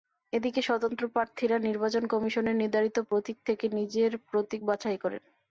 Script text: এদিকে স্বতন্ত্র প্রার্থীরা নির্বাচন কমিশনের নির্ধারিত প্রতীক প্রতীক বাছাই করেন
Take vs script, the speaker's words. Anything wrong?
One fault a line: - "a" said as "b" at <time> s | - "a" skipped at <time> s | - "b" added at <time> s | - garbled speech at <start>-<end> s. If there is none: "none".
- "থেকে নিজের" added at 3.5 s